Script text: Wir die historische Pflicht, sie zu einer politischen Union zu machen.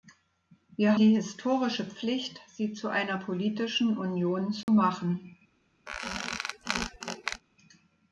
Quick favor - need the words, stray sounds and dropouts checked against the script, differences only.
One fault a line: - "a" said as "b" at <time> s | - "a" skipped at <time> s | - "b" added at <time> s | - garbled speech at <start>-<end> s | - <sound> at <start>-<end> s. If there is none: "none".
- dropout at 4.6-4.7 s
- squeak at 5.9-7.4 s